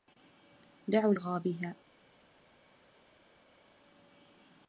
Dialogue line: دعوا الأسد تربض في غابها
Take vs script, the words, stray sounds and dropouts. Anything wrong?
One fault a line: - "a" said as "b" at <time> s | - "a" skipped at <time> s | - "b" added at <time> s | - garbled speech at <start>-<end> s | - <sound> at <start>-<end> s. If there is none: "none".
- "الأسد تربض في" skipped at 1.1 s